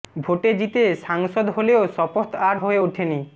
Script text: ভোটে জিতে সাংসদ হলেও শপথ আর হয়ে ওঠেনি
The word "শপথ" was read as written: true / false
true